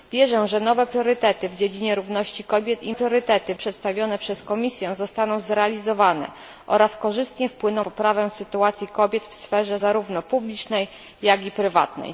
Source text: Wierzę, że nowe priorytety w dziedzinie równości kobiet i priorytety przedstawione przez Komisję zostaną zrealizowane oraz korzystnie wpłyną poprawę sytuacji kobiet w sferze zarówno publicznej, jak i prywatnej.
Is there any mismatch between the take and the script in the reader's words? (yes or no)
no